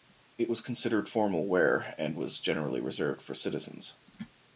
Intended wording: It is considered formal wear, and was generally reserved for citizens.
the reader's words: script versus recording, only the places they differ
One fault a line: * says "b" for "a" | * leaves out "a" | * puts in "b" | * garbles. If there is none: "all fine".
* says "was" for "is"